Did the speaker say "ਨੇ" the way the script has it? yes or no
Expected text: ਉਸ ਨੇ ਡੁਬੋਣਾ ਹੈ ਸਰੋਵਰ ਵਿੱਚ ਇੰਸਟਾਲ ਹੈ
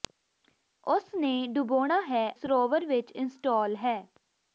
yes